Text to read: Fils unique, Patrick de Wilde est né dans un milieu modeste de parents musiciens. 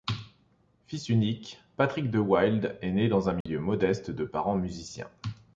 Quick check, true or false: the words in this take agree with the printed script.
true